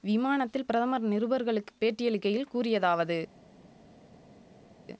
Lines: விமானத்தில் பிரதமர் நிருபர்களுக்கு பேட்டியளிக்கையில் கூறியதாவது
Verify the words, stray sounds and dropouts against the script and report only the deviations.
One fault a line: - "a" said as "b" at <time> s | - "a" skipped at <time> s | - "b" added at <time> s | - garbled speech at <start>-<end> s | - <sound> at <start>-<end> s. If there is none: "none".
none